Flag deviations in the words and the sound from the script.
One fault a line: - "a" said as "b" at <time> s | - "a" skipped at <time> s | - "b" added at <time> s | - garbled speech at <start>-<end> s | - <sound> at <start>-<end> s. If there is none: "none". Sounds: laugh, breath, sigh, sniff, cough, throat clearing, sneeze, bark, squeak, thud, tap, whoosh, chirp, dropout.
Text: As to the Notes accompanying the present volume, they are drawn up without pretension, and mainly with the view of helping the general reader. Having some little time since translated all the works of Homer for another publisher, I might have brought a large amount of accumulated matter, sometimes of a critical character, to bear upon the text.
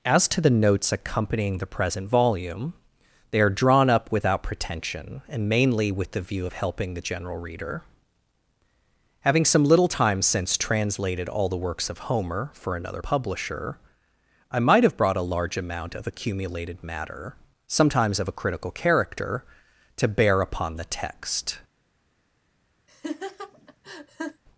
- laugh at 22.9-24.4 s